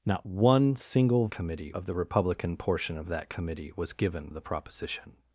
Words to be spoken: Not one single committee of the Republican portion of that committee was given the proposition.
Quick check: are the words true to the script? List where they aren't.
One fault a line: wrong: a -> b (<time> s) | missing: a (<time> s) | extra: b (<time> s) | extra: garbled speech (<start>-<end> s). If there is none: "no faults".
no faults